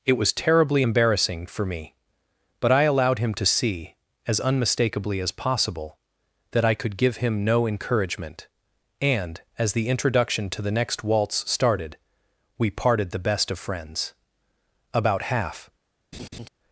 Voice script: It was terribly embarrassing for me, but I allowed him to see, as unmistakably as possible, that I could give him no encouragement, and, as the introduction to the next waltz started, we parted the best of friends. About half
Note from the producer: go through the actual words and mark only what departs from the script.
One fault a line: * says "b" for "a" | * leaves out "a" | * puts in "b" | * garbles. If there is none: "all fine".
all fine